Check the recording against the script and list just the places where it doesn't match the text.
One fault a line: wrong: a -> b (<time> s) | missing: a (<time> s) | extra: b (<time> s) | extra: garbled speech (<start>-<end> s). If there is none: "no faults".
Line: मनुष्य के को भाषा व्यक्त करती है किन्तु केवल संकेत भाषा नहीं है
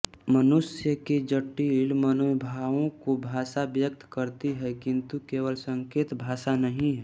extra: जटिल मनोभावों (1.3 s)